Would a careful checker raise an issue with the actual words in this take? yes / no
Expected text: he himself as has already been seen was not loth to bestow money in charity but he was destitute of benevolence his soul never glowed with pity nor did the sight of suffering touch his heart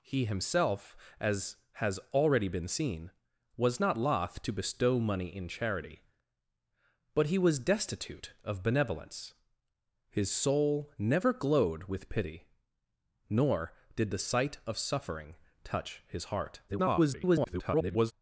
yes